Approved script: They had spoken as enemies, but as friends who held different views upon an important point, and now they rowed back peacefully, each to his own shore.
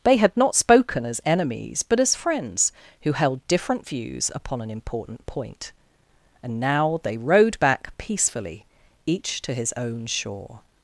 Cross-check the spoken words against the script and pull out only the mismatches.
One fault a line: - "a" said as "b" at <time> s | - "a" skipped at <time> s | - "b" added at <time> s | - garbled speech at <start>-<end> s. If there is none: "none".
- "not" added at 0.3 s